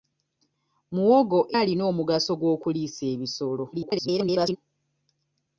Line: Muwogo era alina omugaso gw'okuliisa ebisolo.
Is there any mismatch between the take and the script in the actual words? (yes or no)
yes